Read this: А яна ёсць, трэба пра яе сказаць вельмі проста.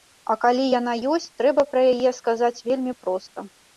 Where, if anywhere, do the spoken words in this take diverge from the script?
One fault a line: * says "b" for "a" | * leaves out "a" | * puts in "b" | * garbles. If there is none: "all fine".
* puts in "калі"